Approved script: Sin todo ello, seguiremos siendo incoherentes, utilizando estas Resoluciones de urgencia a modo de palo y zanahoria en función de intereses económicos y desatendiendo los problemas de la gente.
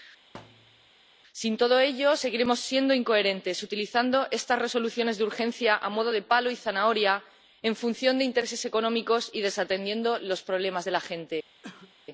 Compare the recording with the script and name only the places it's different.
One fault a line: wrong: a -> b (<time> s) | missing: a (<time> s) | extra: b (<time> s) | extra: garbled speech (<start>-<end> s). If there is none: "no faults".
no faults